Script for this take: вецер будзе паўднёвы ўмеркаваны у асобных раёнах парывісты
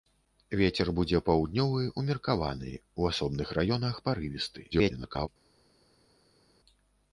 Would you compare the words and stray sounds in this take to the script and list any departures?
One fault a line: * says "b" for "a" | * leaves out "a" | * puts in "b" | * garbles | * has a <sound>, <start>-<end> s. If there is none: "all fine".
* garbles